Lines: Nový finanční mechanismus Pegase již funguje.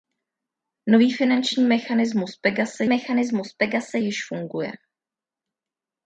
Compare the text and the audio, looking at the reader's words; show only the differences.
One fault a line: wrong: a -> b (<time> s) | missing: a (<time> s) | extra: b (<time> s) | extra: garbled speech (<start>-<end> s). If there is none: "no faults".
extra: mechanismus Pegase (2.8 s)